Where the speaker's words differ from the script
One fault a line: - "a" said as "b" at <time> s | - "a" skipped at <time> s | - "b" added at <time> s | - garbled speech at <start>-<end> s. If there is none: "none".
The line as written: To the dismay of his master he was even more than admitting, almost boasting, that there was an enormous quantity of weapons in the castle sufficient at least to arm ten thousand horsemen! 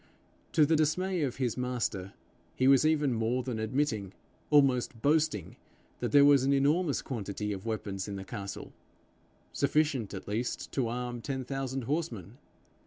none